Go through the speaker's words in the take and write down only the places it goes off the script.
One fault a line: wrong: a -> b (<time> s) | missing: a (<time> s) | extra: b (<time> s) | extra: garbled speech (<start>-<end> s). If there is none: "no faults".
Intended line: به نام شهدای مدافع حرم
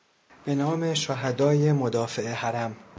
no faults